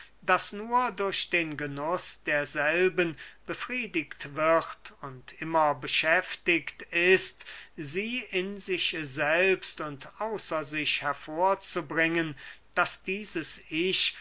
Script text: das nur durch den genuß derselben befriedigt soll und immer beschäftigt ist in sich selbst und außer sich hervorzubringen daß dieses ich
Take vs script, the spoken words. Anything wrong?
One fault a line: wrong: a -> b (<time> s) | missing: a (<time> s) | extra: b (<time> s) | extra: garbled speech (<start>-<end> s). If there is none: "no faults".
wrong: soll -> wird (4.3 s)
extra: sie (7.7 s)